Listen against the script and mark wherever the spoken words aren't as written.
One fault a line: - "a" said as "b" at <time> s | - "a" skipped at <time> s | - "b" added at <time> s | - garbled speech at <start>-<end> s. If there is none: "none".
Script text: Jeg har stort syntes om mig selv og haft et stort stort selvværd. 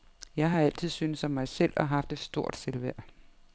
- "stort" said as "altid" at 0.6 s
- "stort" skipped at 2.6 s